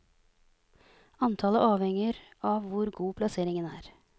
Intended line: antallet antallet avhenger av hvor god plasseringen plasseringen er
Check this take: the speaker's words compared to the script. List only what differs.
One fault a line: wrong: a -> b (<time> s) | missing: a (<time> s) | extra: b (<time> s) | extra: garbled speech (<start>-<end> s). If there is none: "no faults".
missing: antallet (1.6 s)
missing: plasseringen (3.7 s)